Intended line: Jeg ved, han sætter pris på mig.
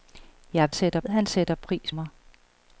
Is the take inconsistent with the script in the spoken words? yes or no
yes